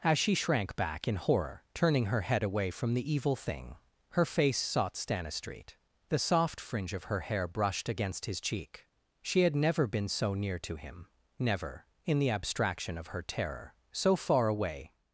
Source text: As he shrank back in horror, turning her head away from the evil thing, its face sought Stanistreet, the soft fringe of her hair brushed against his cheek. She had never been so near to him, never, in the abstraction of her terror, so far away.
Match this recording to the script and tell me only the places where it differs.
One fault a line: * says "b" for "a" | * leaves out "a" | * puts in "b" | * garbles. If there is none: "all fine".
* says "she" for "he"
* says "her" for "its"